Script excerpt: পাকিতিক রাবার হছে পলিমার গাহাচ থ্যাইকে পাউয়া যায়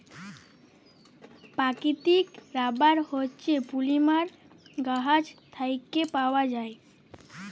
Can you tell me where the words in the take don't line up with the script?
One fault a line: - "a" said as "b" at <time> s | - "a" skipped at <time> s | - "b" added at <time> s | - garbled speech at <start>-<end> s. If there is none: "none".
none